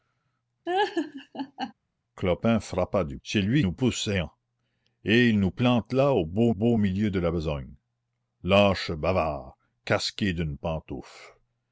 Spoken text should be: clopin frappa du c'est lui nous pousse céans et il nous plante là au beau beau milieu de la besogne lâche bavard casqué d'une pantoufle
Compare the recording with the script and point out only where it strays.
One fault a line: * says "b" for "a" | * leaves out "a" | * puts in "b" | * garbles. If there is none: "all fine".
all fine